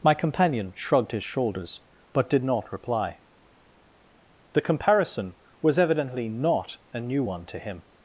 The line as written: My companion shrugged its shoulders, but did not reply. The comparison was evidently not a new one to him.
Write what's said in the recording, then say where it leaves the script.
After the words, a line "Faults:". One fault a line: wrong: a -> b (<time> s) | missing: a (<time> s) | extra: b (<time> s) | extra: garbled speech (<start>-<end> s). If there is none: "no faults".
My companion shrugged his shoulders, but did not reply. The comparison was evidently not a new one to him.
Faults:
wrong: its -> his (1.1 s)